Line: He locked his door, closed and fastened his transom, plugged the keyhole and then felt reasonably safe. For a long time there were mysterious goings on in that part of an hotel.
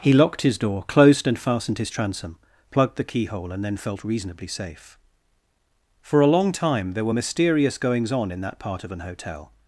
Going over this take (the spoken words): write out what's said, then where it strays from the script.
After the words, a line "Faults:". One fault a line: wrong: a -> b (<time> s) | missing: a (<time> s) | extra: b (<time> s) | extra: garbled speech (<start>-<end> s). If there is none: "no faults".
He locked his door, closed and fastened his transom, plugged the keyhole and then felt reasonably safe. For a long time there were mysterious goings on in that part of an hotel.
Faults:
no faults